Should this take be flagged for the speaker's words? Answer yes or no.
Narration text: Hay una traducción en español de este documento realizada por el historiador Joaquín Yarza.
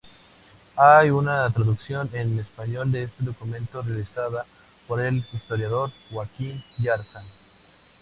no